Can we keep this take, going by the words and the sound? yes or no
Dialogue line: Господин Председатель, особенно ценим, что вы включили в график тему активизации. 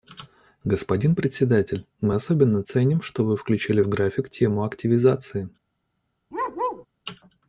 no